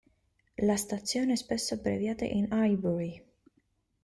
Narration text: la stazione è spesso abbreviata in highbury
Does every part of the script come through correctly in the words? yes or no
yes